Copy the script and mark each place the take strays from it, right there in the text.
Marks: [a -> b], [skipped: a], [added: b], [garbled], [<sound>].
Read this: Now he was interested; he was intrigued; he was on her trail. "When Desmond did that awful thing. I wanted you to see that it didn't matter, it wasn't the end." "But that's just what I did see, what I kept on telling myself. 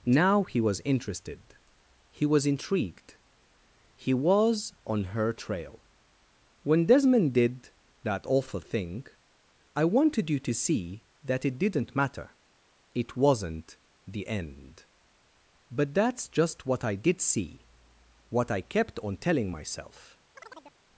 Now he was interested; he was intrigued; he was on her trail. "When Desmond did that awful thing. I wanted you to see that it didn't matter, it wasn't the end." "But that's just what I did see, what I kept on telling myself. [chirp]